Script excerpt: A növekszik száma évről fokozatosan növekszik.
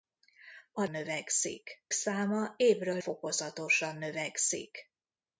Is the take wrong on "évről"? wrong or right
right